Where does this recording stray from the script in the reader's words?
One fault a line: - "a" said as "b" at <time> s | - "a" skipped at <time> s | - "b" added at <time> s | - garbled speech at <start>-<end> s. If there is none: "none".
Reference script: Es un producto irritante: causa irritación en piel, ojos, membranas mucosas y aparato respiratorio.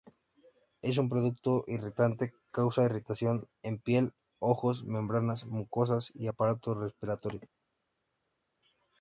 none